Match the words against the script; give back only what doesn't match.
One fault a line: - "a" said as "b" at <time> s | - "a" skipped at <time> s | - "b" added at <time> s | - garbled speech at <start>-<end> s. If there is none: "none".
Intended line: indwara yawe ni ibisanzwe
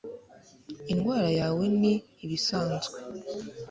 none